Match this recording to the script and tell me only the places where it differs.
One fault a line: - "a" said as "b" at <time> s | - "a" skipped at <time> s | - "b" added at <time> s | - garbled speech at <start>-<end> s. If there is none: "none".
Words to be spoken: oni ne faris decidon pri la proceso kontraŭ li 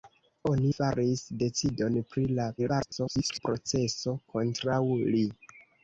- "ne" skipped at 0.7 s
- garbled speech at 2.6-3.4 s